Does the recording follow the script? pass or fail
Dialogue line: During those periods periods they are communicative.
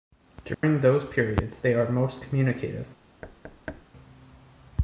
fail